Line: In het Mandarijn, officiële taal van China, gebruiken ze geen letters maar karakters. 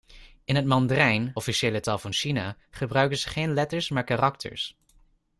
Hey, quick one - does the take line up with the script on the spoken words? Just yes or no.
yes